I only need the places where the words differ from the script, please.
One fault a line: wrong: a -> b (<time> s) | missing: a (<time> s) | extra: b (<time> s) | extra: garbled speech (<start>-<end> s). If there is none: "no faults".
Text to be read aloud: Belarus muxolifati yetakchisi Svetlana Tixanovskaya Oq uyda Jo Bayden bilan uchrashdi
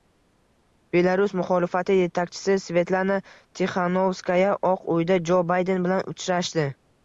no faults